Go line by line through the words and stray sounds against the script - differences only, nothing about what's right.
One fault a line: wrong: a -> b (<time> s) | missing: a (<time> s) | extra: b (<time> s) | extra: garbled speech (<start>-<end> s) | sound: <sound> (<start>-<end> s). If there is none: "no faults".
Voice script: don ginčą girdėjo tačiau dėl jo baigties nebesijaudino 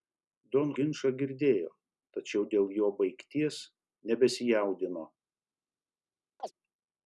sound: chirp (6.4-6.5 s)